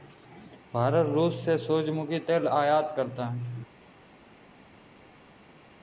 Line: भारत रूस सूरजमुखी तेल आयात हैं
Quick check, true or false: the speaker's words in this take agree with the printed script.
false